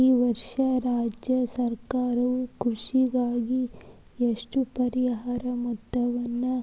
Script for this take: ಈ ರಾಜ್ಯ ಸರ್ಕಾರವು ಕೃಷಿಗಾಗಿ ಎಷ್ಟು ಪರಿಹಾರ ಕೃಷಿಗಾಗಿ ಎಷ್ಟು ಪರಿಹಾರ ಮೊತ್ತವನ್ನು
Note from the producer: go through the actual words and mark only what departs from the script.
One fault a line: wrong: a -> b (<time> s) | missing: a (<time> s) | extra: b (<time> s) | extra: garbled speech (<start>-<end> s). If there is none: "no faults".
extra: ವರ್ಷ (0.2 s)
missing: ಕೃಷಿಗಾಗಿ ಎಷ್ಟು ಪರಿಹಾರ (5.4 s)